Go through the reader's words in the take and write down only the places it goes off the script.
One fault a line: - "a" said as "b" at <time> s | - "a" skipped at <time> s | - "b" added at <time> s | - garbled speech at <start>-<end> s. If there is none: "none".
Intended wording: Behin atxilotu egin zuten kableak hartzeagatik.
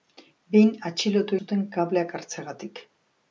- "egin" skipped at 1.4 s